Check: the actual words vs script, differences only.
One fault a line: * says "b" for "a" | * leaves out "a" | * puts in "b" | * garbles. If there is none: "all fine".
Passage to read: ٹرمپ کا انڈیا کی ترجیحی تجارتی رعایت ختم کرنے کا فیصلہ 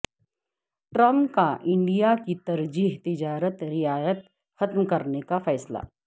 all fine